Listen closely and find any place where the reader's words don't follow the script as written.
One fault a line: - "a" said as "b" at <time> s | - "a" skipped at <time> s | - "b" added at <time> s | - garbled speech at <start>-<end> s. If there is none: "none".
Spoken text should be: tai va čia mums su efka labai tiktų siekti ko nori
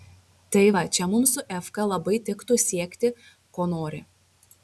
none